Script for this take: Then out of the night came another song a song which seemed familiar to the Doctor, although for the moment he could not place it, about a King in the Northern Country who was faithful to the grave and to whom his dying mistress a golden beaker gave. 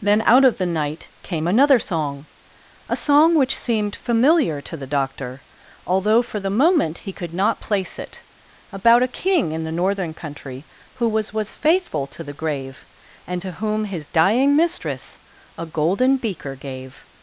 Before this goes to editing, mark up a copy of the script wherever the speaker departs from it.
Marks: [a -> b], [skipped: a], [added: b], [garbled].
Then out of the night came another song a song which seemed familiar to the Doctor, although for the moment he could not place it, about a King in the Northern Country who was [added: was] faithful to the grave and to whom his dying mistress a golden beaker gave.